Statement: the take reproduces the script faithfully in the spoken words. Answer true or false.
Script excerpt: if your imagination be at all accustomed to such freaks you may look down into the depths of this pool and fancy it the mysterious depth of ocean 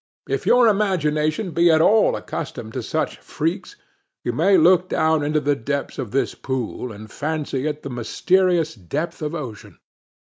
true